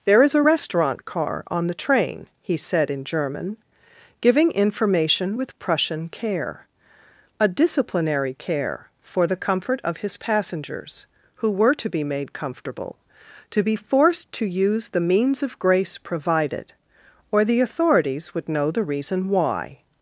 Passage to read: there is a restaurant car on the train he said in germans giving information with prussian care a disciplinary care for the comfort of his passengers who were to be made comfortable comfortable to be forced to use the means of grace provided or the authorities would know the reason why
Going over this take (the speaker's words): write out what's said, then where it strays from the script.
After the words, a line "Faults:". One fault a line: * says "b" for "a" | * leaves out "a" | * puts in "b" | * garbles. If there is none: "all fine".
there is a restaurant car on the train he said in german giving information with prussian care a disciplinary care for the comfort of his passengers who were to be made comfortable to be forced to use the means of grace provided or the authorities would know the reason why
Faults:
* says "german" for "germans"
* leaves out "comfortable"